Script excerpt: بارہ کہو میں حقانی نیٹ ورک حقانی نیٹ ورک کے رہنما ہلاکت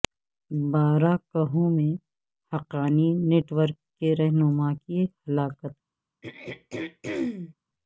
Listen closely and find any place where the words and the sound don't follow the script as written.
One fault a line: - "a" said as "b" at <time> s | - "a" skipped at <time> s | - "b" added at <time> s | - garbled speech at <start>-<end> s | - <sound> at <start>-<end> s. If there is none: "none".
- "حقانی نیٹ ورک" skipped at 3.8 s
- "کی" added at 4.8 s
- throat clearing at 6.2-7.5 s